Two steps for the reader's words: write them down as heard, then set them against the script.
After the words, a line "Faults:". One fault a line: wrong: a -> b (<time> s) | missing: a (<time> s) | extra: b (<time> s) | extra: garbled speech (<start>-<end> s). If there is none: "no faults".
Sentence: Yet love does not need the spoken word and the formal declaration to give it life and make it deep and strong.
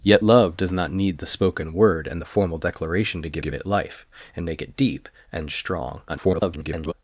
Yet love does not need the spoken word and the formal declaration to give give it life and make it deep and strong. [garbled]
Faults:
extra: give (3.4 s)
extra: garbled speech (6.1-6.9 s)